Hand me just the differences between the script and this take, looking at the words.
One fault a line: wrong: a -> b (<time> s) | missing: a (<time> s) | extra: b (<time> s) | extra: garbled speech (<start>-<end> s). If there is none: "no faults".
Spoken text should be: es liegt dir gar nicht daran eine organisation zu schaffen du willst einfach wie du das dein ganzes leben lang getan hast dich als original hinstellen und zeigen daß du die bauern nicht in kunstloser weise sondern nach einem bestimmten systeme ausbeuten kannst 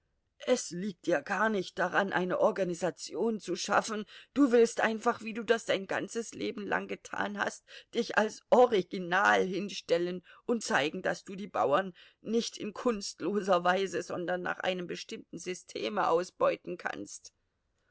no faults